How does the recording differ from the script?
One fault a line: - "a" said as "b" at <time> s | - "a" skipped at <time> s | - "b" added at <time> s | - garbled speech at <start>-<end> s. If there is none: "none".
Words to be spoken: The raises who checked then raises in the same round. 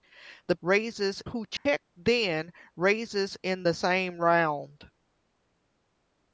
none